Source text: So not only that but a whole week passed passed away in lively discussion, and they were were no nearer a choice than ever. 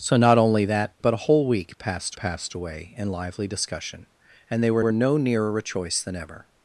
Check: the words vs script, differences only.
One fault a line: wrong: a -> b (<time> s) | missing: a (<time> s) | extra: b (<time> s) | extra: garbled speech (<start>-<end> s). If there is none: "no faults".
no faults